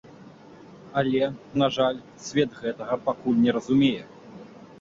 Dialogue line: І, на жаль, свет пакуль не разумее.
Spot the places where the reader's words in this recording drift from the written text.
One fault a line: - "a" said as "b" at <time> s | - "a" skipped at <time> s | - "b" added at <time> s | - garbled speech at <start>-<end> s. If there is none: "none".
- "І" said as "Але" at 1.0 s
- "гэтага" added at 2.6 s